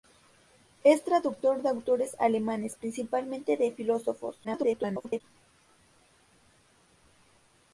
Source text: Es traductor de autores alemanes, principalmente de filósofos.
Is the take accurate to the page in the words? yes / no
no